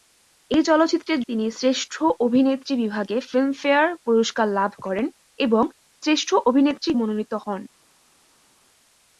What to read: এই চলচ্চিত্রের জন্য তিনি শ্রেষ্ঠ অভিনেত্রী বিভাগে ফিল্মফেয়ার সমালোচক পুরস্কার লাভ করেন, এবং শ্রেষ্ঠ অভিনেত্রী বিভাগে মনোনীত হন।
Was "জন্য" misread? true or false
true